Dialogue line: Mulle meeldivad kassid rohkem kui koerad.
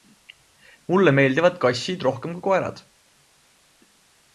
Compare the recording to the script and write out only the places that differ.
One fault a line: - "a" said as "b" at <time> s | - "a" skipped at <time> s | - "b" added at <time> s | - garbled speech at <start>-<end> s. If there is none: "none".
none